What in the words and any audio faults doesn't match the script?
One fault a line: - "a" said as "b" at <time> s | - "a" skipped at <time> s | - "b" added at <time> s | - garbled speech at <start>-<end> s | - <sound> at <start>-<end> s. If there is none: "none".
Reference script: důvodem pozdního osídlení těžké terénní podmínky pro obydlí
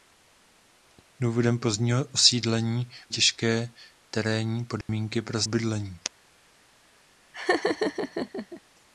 - dropout at 4.8-4.9 s
- laugh at 7.3-8.6 s